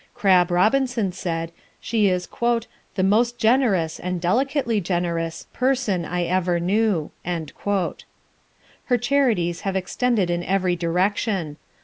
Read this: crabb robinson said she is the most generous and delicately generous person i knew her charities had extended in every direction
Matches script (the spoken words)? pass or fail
fail